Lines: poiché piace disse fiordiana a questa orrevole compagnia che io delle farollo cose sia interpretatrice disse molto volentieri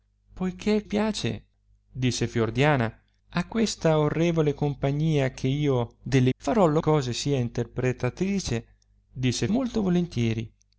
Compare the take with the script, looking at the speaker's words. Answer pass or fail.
pass